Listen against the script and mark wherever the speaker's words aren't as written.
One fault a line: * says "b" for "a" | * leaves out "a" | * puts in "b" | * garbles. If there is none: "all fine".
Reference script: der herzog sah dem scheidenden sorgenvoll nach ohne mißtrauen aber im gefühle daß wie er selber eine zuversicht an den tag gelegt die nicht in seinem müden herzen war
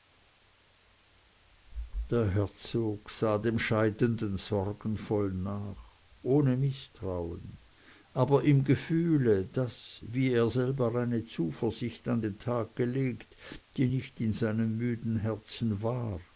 all fine